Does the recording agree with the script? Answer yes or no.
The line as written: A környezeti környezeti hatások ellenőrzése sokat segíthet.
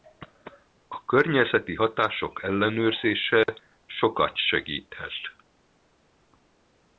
no